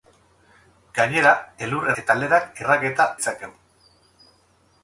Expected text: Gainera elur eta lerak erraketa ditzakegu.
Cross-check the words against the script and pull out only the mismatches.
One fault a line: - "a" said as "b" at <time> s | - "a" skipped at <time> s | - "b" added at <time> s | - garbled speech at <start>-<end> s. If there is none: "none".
none